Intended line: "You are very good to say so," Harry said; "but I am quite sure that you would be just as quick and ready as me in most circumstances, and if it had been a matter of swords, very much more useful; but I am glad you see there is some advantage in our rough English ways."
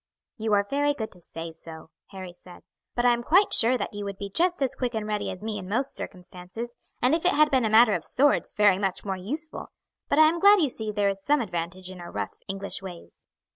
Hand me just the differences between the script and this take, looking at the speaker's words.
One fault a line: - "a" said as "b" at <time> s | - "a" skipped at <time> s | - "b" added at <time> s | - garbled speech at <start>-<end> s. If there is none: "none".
none